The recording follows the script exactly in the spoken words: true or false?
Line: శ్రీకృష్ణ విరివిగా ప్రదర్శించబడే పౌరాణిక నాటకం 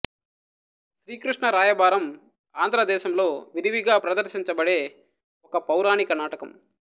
false